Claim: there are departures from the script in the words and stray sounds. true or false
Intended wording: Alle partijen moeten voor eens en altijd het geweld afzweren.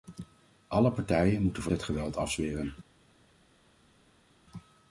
true